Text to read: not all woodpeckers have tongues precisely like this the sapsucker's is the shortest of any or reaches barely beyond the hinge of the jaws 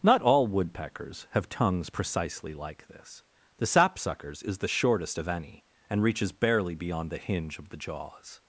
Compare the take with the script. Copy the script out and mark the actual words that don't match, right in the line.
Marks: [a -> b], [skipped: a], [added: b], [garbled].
not all woodpeckers have tongues precisely like this the sapsucker's is the shortest of any [or -> and] reaches barely beyond the hinge of the jaws